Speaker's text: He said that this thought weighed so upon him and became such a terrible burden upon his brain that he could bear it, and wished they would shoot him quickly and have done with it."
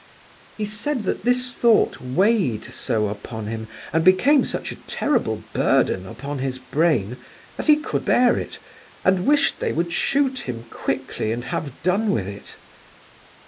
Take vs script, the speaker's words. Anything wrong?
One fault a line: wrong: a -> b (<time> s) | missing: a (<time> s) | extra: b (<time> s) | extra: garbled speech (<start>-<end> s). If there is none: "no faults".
no faults